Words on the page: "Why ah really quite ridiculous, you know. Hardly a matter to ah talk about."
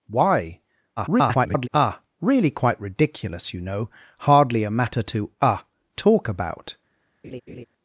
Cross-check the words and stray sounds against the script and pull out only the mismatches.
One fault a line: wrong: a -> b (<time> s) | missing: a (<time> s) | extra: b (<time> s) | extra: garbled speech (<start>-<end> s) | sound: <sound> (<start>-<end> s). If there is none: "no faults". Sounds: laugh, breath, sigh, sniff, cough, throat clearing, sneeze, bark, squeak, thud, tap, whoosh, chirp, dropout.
extra: garbled speech (1.0-1.7 s)
sound: laugh (7.2-7.7 s)